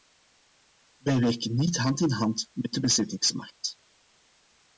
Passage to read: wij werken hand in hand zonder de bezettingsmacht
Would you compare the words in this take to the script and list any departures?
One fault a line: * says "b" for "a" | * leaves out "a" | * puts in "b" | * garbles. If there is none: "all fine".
* puts in "niet"
* says "met" for "zonder"